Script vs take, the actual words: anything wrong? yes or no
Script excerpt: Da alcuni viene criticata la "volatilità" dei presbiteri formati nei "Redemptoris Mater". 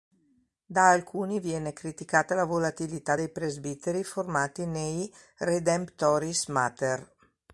no